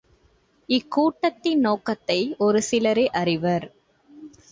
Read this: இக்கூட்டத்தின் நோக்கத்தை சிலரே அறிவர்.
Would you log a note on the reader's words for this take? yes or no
yes